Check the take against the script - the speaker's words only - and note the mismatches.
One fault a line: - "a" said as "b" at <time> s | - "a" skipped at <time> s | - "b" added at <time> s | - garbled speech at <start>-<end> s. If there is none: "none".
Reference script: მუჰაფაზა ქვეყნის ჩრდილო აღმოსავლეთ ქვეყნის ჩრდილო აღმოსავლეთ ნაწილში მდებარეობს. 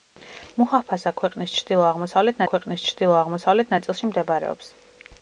none